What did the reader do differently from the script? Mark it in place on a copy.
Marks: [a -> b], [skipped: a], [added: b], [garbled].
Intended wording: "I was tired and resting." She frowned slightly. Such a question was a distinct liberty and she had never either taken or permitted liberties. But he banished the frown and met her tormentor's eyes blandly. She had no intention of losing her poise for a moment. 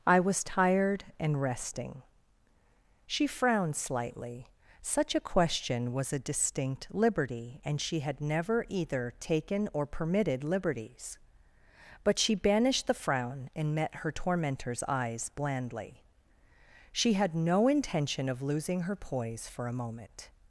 "I was tired and resting." She frowned slightly. Such a question was a distinct liberty and she had never either taken or permitted liberties. But [he -> she] banished the frown and met her tormentor's eyes blandly. She had no intention of losing her poise for a moment.